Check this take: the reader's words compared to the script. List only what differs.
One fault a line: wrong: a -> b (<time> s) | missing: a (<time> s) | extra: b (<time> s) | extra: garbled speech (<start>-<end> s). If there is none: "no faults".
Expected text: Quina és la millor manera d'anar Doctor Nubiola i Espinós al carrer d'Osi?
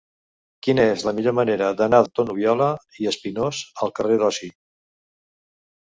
no faults